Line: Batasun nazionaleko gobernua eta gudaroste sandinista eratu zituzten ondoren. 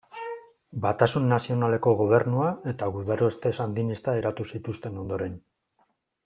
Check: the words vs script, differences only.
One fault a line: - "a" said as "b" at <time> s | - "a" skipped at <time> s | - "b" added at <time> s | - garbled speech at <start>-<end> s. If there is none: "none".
none